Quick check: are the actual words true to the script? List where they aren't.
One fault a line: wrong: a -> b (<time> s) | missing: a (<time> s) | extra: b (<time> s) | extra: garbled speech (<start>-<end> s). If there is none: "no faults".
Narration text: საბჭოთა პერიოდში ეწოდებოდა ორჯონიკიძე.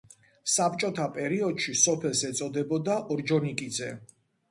extra: სოფელს (1.8 s)